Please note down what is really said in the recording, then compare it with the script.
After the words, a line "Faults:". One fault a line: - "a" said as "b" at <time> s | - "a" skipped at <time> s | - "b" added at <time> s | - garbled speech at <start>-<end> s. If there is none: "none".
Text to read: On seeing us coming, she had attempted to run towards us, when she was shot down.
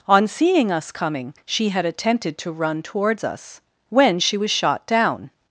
On seeing us coming, she had attempted to run towards us, when she was shot down.
Faults:
none